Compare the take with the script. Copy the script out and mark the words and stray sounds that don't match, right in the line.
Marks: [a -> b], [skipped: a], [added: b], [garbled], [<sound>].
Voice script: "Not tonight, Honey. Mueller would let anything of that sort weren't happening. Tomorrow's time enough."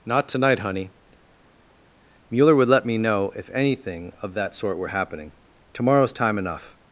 "Not tonight, Honey. Mueller would let [added: me know if] anything of that sort [weren't -> were] happening. Tomorrow's time enough."